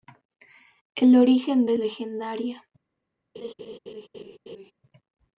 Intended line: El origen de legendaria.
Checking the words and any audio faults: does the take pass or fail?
fail